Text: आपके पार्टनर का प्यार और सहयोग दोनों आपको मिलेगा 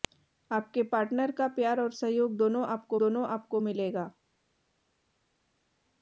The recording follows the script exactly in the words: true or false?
false